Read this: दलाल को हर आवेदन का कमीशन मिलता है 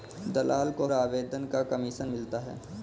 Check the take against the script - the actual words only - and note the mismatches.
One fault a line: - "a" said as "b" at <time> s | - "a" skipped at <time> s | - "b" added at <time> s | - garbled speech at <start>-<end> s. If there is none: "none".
- "हर" skipped at 0.9 s